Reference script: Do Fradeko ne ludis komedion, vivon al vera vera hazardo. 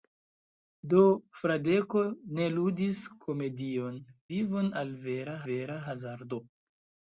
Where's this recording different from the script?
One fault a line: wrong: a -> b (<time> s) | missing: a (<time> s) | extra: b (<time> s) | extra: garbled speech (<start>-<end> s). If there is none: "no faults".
no faults